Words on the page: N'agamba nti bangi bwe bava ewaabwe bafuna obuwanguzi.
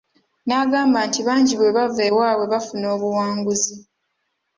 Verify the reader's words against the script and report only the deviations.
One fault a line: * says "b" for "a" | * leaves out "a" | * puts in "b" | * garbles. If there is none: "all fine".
all fine